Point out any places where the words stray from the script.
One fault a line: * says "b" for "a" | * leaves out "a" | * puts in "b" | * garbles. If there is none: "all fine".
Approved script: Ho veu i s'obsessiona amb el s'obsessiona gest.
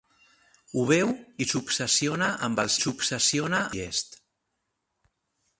all fine